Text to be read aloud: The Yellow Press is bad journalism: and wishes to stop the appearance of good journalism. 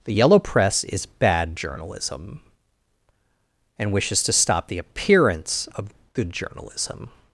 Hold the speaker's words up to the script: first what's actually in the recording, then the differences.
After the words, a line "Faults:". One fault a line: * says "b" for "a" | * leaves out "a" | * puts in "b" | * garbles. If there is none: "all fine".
The Yellow Press is bad journalism: and wishes to stop the appearance of good journalism.
Faults:
all fine